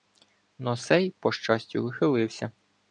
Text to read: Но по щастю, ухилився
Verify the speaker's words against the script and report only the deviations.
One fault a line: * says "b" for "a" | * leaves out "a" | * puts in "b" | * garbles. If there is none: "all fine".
* puts in "сей"